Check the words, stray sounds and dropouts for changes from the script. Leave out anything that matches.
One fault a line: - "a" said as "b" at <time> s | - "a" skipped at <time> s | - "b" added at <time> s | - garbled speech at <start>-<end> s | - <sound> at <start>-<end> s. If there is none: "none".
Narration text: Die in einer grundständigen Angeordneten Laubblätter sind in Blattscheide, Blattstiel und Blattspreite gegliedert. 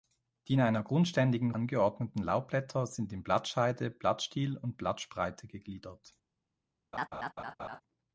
- laugh at 6.9-7.8 s